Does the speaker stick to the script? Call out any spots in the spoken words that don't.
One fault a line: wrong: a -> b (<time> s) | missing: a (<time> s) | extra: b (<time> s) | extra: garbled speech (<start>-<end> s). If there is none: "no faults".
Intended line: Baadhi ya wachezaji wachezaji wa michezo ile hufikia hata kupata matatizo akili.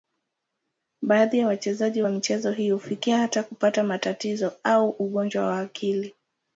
missing: wachezaji (2.0 s)
wrong: ile -> hii (2.5 s)
extra: au ugonjwa wa (4.6 s)